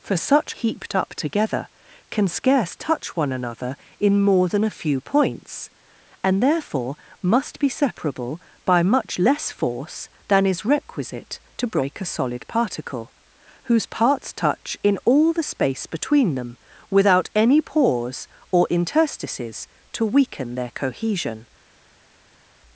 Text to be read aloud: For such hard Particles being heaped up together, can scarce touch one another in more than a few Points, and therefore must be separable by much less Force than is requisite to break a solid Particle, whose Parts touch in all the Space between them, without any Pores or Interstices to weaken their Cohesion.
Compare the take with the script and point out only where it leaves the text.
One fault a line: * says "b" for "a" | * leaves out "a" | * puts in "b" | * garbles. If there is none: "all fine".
* leaves out "hard Particles being"